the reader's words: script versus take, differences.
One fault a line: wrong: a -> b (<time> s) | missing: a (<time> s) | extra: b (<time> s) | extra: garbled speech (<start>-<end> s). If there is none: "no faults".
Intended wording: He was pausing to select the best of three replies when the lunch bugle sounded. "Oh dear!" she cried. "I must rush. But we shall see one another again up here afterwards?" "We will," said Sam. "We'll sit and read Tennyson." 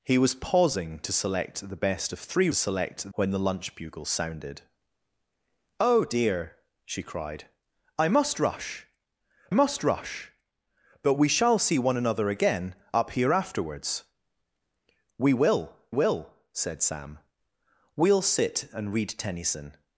wrong: replies -> select (2.5 s)
extra: must rush (9.5 s)
extra: will (15.9 s)